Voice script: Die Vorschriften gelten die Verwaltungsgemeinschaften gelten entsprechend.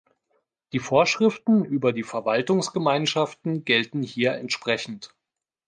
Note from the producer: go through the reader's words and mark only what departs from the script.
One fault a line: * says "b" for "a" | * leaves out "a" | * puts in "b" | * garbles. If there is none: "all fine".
* says "über" for "gelten"
* puts in "hier"